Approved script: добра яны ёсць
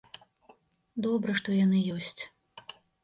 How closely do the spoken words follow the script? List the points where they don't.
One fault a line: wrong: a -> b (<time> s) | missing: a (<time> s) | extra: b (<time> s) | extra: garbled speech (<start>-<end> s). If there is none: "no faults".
extra: што (1.4 s)